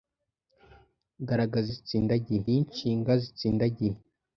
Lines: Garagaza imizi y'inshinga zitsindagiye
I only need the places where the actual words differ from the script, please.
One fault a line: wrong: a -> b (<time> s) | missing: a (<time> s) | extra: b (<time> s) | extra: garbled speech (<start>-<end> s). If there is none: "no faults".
wrong: imizi -> zitsindagiye (1.7 s)